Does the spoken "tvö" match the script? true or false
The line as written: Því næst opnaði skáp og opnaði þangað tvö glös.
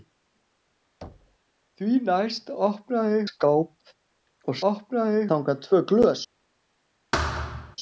true